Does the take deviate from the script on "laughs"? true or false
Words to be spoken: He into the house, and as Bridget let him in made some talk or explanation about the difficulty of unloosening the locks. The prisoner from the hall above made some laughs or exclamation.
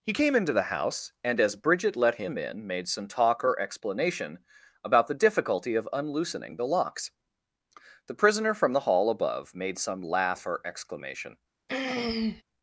true